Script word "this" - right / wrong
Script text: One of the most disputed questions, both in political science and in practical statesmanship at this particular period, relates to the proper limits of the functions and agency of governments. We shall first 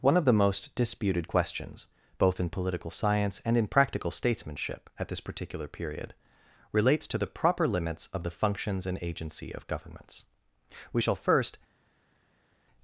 right